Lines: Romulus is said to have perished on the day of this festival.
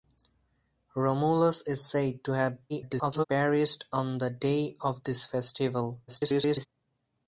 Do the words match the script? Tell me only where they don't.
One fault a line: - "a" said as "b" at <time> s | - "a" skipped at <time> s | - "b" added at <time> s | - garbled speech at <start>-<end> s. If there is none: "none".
- garbled speech at 2.7-3.2 s
- garbled speech at 6.1-6.7 s